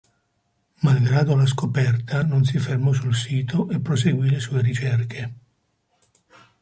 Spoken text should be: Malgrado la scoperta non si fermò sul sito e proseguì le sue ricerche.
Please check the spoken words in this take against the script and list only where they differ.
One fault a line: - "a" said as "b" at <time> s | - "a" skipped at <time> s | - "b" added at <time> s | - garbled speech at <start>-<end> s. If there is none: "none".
none